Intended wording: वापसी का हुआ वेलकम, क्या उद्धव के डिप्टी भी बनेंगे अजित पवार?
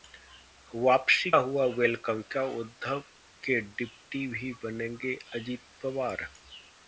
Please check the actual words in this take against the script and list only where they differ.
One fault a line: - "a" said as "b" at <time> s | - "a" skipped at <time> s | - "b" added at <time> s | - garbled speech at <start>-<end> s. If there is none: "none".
- "का" skipped at 1.3 s